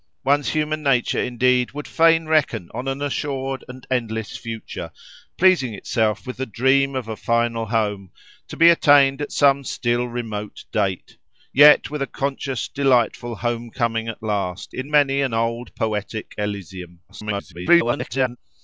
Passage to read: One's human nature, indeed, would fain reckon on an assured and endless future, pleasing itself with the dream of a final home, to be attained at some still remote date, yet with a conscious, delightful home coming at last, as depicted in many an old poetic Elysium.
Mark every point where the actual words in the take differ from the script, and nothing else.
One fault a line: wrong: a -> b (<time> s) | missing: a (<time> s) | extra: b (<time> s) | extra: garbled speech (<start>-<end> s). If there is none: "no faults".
missing: as depicted (14.7 s)
extra: garbled speech (17.1-18.4 s)